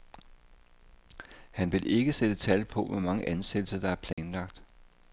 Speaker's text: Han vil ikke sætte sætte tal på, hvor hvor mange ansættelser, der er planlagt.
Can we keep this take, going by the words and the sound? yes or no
no